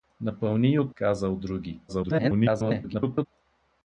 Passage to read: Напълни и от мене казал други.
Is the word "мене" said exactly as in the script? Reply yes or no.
no